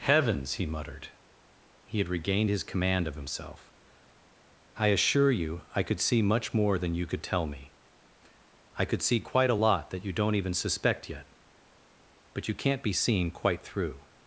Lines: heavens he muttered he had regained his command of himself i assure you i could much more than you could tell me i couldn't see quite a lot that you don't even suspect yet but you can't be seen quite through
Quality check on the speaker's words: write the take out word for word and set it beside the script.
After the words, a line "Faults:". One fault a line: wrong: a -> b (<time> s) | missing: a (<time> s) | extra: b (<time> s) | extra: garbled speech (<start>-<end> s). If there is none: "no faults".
heavens he muttered he had regained his command of himself i assure you i could see much more than you could tell me i could see quite a lot that you don't even suspect yet but you can't be seen quite through
Faults:
extra: see (6.0 s)
wrong: couldn't -> could (8.9 s)